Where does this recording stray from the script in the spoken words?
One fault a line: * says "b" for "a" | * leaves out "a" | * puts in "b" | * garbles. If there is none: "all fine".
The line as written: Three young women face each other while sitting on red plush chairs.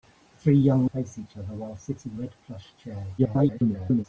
* leaves out "women"
* leaves out "on"
* garbles